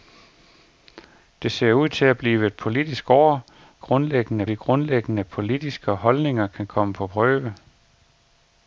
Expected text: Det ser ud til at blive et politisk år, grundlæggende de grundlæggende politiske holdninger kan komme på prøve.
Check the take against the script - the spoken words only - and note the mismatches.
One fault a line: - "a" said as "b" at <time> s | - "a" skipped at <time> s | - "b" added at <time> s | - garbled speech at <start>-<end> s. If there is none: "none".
none